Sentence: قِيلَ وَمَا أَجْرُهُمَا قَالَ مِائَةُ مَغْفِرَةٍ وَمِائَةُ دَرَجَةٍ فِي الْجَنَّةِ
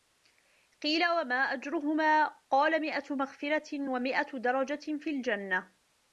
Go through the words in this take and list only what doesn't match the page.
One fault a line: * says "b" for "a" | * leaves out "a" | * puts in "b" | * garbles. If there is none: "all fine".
all fine